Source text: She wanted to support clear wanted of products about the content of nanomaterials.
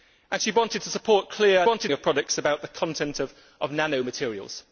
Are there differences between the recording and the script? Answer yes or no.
no